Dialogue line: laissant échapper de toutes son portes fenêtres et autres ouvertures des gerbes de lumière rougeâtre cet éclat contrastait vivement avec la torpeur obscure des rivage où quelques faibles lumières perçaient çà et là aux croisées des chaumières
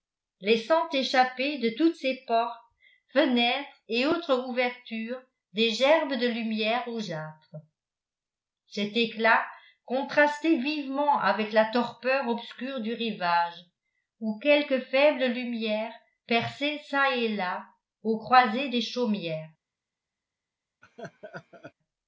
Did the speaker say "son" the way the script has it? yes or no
no